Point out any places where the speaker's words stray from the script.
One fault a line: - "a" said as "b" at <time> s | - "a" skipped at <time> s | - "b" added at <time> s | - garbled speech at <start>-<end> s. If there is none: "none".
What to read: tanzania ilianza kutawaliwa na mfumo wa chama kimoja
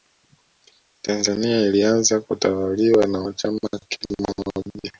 - "mfumo" skipped at 3.2 s